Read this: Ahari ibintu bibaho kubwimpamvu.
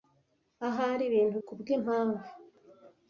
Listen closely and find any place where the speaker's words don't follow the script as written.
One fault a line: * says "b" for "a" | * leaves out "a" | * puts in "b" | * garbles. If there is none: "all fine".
* leaves out "bibaho"